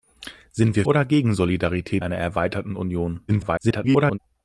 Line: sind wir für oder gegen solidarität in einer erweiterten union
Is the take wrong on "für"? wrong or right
wrong